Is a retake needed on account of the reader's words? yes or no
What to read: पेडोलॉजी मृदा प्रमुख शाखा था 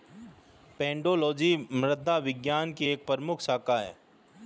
yes